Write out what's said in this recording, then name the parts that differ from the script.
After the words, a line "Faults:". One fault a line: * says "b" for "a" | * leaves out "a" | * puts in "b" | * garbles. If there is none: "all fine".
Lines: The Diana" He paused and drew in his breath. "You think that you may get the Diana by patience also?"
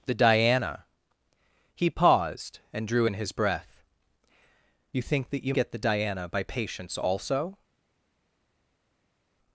The Diana" He paused and drew in his breath. "You think that you get the Diana by patience also?"
Faults:
* leaves out "may"